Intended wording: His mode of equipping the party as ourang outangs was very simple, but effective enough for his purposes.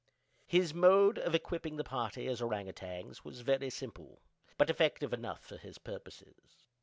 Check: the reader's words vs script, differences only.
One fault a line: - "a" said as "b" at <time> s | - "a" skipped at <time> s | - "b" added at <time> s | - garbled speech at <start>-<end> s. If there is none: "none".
none